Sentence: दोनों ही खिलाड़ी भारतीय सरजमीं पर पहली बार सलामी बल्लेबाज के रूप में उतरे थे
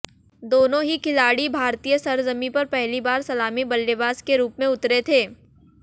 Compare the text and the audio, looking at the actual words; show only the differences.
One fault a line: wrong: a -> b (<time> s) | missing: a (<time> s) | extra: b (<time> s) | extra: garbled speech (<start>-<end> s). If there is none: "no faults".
no faults